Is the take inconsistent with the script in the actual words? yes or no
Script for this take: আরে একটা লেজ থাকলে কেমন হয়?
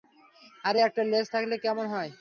no